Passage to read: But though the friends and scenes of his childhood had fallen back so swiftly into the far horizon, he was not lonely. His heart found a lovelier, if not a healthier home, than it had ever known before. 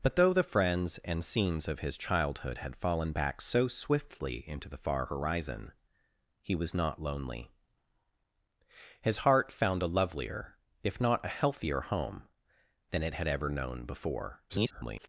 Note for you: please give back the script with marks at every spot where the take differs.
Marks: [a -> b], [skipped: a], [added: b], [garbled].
But though the friends and scenes of his childhood had fallen back so swiftly into the far horizon, he was not lonely. His heart found a lovelier, if not a healthier home, than it had ever known before. [garbled]